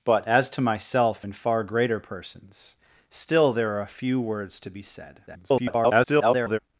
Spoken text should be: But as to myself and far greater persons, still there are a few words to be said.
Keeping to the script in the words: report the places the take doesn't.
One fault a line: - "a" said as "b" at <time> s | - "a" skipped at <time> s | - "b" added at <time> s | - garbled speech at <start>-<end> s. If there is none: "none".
- garbled speech at 5.3-6.6 s